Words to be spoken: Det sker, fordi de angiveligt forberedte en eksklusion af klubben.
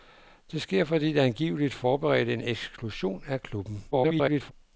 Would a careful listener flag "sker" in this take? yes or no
no